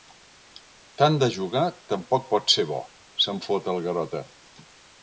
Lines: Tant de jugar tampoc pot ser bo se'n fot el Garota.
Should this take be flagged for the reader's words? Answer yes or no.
no